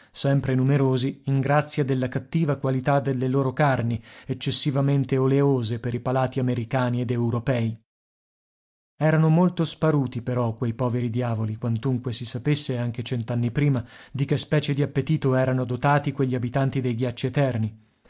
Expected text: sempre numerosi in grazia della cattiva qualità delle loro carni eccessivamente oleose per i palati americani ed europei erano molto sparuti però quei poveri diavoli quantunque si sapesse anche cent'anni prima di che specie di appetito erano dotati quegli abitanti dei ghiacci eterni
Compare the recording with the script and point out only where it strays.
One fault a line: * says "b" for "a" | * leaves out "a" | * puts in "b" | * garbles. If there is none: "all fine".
all fine